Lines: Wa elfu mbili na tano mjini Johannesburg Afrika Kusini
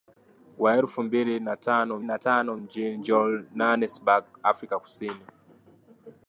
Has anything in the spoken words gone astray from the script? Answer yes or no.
yes